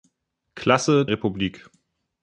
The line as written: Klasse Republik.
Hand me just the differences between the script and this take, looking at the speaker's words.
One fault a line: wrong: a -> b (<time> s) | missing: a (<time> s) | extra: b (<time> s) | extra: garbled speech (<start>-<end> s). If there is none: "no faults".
no faults